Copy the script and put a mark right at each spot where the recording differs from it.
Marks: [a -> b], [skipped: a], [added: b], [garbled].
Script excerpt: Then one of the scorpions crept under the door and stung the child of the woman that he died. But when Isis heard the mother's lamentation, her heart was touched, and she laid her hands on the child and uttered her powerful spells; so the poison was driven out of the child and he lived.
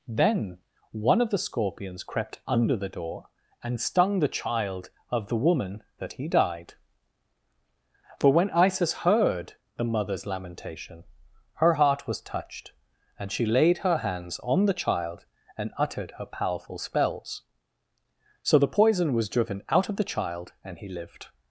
Then one of the scorpions crept under the door and stung the child of the woman that he died. [But -> For] when Isis heard the mother's lamentation, her heart was touched, and she laid her hands on the child and uttered her powerful spells; so the poison was driven out of the child and he lived.